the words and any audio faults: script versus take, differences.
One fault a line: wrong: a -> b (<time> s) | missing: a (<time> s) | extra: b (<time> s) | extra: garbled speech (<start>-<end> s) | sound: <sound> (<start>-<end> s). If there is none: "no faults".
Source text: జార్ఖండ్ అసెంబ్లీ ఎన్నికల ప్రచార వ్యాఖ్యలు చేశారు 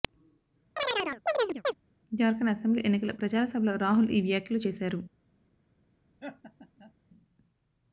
sound: chirp (0.8-1.7 s)
extra: సభలో రాహుల్ ఈ (3.4 s)
sound: laugh (6.2-6.9 s)